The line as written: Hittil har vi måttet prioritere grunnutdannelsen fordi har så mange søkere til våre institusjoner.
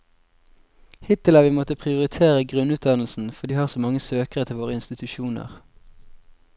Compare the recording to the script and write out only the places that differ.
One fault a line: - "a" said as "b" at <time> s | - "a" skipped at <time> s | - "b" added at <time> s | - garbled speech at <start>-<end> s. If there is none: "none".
none